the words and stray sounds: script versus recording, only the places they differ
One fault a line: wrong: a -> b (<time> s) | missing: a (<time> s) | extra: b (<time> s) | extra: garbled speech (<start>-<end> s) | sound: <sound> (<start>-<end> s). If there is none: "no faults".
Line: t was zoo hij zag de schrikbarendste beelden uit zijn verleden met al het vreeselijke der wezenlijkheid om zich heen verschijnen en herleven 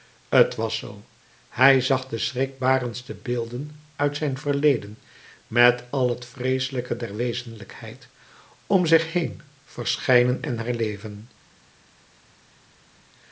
no faults